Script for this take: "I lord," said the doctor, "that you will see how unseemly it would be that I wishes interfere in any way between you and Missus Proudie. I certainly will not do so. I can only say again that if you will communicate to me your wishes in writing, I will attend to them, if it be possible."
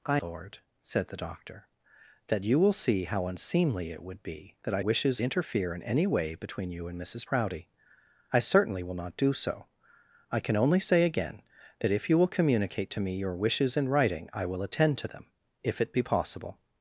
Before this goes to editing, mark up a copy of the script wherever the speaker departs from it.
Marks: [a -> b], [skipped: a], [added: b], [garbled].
"I lord," said the doctor, "that you will see how unseemly it would be that I wishes interfere in any way between you and Missus Proudie. I certainly will not do so. I can only say again that if you will communicate to me your wishes in writing, I will attend to them, if it be possible."